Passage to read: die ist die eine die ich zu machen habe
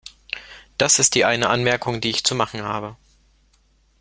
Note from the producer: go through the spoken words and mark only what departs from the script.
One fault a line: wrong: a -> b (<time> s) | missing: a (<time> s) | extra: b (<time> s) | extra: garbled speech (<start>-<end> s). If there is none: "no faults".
wrong: die -> das (0.8 s)
extra: anmerkung (1.5 s)